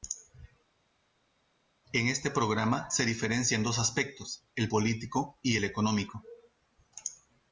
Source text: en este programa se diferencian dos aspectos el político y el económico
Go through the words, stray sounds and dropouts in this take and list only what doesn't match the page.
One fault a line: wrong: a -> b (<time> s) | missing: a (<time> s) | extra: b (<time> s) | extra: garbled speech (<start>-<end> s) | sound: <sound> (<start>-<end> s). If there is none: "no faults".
no faults